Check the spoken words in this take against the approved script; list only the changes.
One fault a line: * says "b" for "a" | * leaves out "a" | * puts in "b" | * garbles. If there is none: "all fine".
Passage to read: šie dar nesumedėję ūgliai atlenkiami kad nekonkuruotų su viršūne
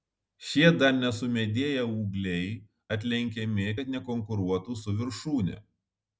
all fine